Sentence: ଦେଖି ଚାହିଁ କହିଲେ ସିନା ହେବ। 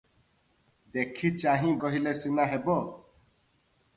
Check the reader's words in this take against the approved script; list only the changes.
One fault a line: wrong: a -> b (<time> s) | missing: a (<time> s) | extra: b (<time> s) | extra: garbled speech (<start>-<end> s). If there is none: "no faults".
no faults